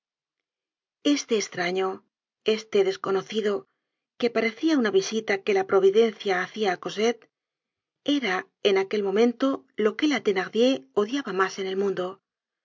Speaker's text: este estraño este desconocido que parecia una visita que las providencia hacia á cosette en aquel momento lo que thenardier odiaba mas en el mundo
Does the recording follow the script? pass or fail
fail